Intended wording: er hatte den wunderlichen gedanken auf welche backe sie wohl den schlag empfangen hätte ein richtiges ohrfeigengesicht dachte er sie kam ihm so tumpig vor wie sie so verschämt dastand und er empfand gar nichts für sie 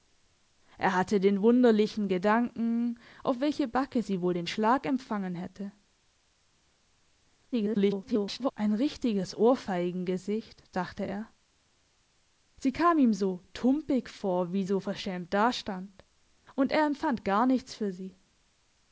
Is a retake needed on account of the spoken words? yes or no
yes